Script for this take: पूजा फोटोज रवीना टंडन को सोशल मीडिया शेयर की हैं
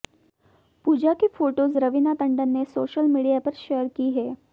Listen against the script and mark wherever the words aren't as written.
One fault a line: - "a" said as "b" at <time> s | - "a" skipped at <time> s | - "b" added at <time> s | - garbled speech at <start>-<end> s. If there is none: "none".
- "की" added at 1.1 s
- "को" said as "ने" at 2.5 s
- "पर" added at 3.4 s